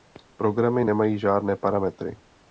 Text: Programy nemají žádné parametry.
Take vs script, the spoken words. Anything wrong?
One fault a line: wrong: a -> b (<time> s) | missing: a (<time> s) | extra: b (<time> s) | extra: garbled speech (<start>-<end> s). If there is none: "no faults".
no faults